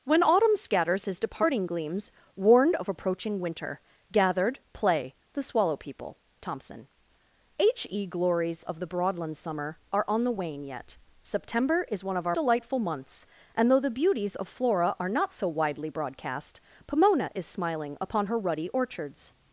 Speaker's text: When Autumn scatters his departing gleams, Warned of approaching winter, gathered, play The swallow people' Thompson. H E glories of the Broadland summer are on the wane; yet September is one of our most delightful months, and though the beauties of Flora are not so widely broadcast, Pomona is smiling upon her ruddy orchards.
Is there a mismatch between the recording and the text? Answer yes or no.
yes